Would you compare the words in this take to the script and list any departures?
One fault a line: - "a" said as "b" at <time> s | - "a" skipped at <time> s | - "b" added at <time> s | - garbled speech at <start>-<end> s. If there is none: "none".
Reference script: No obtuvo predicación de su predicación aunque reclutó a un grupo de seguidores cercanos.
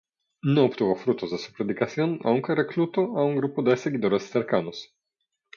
- "predicación" said as "frutos" at 0.9 s